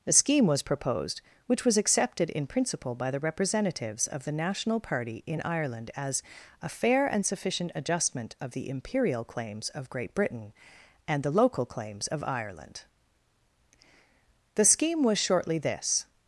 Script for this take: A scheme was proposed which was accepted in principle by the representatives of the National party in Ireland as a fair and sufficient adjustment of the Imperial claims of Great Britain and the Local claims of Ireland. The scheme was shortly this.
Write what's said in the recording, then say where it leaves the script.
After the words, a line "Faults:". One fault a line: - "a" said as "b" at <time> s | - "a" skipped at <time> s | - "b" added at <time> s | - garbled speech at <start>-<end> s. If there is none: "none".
A scheme was proposed which was accepted in principle by the representatives of the National party in Ireland as a fair and sufficient adjustment of the Imperial claims of Great Britain and the Local claims of Ireland. The scheme was shortly this.
Faults:
none